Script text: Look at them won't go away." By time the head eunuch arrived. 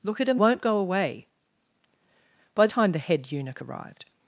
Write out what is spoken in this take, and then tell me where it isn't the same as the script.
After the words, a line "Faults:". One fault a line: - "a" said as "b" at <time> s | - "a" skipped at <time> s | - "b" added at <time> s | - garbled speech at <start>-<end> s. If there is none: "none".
Look at them won't go away." By time the head eunuch arrived.
Faults:
none